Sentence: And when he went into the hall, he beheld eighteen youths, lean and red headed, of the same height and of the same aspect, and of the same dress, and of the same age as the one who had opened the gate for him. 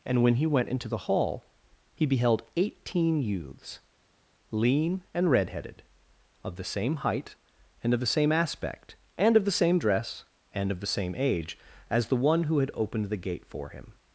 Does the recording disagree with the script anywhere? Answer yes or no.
no